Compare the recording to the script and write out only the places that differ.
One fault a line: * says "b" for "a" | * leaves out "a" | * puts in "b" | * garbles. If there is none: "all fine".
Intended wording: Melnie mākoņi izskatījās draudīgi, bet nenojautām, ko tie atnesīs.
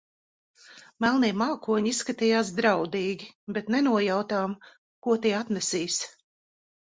all fine